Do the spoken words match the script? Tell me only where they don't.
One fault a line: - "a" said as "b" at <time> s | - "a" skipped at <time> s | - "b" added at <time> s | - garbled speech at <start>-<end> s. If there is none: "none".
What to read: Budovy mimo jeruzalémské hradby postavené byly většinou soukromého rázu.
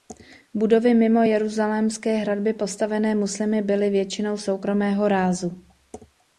- "muslimy" added at 3.1 s